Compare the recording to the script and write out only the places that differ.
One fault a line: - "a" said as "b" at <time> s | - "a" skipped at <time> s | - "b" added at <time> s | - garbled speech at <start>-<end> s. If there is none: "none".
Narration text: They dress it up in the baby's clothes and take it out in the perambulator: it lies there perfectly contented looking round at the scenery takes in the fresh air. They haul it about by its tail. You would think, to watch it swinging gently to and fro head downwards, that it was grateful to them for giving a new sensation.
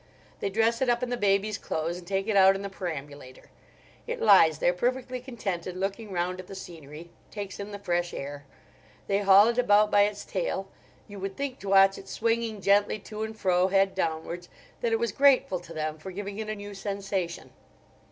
- "it" added at 16.4 s